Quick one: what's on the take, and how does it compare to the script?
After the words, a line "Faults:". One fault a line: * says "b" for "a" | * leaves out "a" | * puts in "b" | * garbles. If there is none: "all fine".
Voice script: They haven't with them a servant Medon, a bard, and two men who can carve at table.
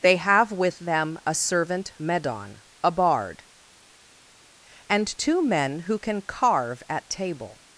They have with them a servant Medon, a bard, and two men who can carve at table.
Faults:
* says "have" for "haven't"